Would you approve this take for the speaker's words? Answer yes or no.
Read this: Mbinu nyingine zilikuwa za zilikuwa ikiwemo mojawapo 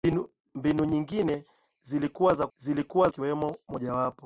yes